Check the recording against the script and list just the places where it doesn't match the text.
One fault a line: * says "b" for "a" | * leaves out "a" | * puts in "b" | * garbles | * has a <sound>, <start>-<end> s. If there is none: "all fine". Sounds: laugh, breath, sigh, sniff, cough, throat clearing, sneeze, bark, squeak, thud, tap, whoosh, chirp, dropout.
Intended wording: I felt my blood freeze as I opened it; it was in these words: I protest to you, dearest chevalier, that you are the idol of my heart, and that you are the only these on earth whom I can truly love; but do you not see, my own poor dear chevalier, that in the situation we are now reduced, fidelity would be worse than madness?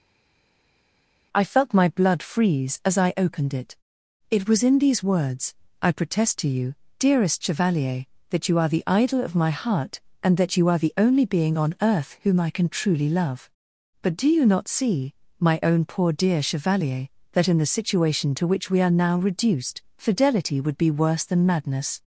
* says "being" for "these"
* puts in "to which"